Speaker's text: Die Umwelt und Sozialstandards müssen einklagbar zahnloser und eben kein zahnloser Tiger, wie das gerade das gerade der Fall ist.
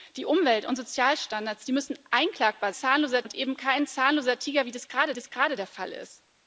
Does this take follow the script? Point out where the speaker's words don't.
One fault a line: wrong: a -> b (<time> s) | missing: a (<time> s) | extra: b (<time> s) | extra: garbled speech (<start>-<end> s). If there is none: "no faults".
no faults